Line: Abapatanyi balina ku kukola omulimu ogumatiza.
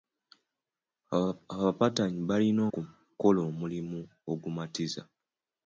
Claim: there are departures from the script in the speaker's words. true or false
false